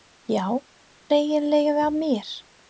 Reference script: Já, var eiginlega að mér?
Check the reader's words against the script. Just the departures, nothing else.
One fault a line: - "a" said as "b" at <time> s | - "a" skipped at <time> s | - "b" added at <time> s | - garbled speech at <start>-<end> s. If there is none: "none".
none